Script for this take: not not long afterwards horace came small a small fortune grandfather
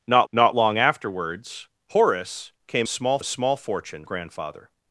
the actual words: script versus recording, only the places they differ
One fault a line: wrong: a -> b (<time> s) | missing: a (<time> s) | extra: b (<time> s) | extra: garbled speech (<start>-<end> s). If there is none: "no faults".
no faults